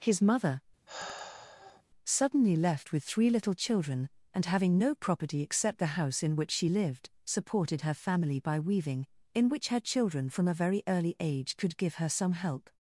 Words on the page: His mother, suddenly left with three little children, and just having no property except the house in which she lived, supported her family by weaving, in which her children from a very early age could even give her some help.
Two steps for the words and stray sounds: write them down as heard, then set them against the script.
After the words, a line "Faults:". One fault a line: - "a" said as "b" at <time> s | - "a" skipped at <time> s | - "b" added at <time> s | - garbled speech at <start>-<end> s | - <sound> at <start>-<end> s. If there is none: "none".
His mother, suddenly left with three little children, and having no property except the house in which she lived, supported her family by weaving, in which her children from a very early age could give her some help.
Faults:
- sigh at 0.9-1.8 s
- "just" skipped at 4.4 s
- "even" skipped at 11.8 s